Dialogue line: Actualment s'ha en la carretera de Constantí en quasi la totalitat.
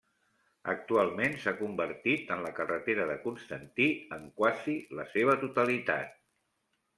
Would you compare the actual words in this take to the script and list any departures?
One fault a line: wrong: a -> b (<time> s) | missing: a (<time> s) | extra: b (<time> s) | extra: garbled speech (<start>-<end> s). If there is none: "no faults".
extra: convertit (1.6 s)
extra: seva (5.1 s)